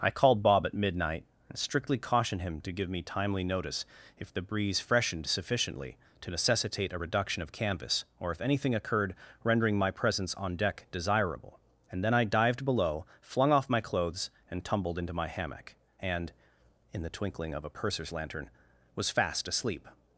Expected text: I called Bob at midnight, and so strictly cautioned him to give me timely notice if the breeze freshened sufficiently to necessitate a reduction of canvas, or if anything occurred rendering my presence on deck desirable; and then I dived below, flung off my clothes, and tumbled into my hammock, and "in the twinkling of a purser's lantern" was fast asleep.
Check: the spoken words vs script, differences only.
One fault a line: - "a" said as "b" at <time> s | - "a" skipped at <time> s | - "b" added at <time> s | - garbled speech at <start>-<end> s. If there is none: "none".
- "so" skipped at 1.6 s